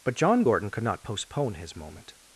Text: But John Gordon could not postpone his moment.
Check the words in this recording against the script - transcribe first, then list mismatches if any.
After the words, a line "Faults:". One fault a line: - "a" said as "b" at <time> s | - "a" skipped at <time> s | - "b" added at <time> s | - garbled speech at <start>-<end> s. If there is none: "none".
But John Gordon could not postpone his moment.
Faults:
none